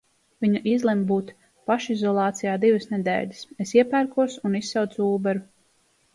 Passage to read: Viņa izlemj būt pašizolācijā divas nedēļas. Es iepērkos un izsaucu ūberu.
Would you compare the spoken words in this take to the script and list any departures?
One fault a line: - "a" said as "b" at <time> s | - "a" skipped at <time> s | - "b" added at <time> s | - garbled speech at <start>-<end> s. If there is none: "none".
none